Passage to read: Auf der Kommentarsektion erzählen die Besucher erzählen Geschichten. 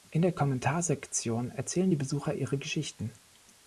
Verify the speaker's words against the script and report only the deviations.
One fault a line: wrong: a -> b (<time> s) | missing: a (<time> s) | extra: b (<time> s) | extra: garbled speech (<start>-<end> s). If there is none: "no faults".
wrong: Auf -> In (0.1 s)
wrong: erzählen -> ihre (2.3 s)